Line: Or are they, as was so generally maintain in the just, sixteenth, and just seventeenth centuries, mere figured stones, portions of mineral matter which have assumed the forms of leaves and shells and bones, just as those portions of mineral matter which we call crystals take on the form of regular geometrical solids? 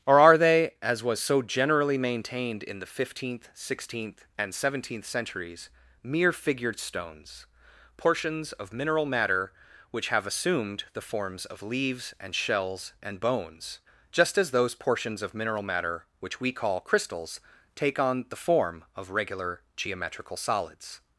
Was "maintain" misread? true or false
true